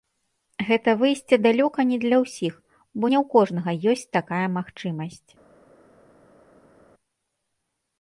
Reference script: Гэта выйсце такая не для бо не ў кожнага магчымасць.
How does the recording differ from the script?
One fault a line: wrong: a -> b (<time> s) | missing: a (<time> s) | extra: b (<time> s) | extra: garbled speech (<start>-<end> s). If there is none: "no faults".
wrong: такая -> далёка (1.5 s)
extra: ўсіх (2.2 s)
extra: ёсць такая (3.9 s)